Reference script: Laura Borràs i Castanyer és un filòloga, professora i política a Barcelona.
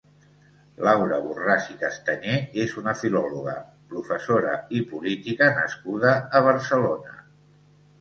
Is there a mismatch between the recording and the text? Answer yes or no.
yes